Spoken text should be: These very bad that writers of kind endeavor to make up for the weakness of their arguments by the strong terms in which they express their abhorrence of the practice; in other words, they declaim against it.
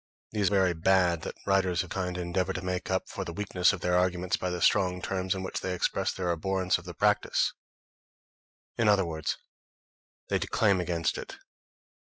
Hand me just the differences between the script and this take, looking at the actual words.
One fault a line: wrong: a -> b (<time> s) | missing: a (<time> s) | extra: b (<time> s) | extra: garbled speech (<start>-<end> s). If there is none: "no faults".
no faults